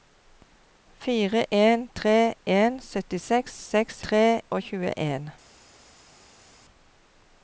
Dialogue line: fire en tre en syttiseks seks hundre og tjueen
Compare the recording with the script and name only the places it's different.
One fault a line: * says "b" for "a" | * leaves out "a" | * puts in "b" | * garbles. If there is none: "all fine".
* says "tre" for "hundre"